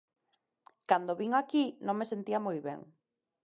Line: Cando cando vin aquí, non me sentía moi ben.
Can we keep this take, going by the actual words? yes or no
no